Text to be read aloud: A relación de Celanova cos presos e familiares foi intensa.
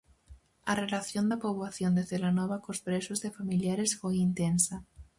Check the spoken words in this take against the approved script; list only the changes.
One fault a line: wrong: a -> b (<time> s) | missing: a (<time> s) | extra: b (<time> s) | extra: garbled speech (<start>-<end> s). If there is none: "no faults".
extra: da poboación (1.3 s)